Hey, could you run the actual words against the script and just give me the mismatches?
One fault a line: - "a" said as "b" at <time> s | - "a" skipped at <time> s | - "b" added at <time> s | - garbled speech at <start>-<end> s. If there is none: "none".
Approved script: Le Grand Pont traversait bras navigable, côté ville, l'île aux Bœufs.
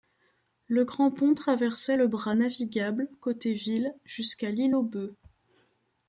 - "le" added at 1.9 s
- "jusqu'à" added at 4.1 s